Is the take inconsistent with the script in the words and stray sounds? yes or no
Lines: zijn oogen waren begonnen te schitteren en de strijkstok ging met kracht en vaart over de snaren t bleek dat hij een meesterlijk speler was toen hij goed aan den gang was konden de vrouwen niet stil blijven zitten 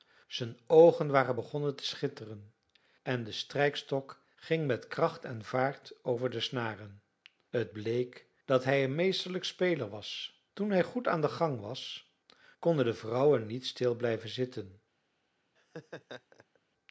yes